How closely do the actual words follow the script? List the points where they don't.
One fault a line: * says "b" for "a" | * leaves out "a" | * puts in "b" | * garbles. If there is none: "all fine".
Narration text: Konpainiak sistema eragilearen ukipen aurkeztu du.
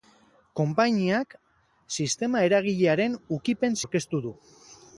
all fine